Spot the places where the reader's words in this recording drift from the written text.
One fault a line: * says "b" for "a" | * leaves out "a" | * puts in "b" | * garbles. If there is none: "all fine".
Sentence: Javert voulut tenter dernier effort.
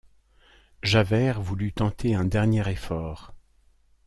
* puts in "un"